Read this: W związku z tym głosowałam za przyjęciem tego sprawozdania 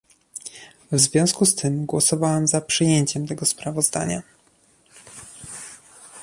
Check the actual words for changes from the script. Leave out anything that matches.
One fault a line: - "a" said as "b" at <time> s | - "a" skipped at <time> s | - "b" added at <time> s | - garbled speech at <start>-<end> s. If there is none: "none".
none